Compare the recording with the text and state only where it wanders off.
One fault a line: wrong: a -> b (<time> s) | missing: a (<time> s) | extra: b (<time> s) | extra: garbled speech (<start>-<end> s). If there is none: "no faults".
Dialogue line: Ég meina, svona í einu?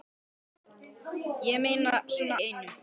no faults